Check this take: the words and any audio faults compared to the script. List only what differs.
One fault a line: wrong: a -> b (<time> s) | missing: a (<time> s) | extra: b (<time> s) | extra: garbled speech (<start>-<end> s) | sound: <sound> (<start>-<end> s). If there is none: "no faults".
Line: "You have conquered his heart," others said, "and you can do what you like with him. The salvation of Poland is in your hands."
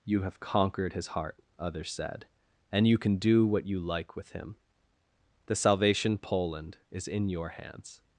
missing: of (6.2 s)